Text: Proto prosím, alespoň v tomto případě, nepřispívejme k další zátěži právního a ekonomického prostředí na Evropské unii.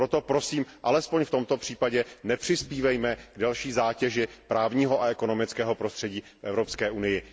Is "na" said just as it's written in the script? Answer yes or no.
no